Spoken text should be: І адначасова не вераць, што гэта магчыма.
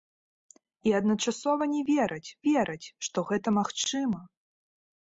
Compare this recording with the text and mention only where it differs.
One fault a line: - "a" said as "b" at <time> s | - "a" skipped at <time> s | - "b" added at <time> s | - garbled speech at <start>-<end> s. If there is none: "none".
- "вераць" added at 2.5 s